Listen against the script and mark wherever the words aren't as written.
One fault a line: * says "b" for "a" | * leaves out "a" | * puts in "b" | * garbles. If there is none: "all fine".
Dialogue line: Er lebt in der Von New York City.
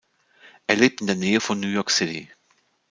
* puts in "Nähe"